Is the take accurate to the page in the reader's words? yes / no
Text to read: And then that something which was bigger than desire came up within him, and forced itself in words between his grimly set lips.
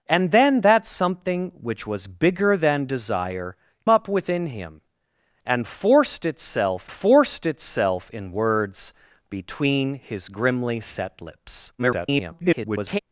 no